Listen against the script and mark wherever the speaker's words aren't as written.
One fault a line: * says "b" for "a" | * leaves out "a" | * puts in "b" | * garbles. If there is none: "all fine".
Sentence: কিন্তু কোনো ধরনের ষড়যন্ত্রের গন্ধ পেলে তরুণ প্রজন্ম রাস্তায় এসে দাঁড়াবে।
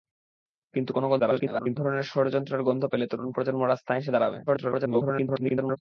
* garbles
* garbles